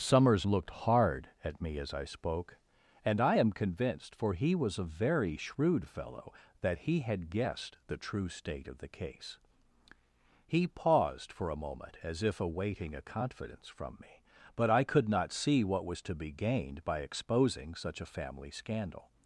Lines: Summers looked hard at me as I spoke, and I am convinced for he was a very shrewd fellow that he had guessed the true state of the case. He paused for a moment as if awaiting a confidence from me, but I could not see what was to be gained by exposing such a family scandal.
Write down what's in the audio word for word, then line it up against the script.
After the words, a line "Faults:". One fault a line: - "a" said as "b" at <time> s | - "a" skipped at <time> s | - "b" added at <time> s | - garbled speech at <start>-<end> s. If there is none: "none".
Summers looked hard at me as I spoke, and I am convinced for he was a very shrewd fellow that he had guessed the true state of the case. He paused for a moment as if awaiting a confidence from me, but I could not see what was to be gained by exposing such a family scandal.
Faults:
none